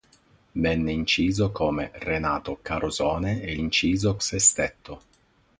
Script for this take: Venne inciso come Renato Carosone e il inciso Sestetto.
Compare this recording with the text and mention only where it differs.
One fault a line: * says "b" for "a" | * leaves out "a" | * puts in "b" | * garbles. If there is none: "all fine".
all fine